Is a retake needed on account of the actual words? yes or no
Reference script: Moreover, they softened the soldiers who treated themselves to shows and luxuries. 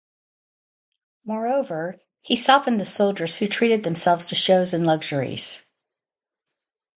yes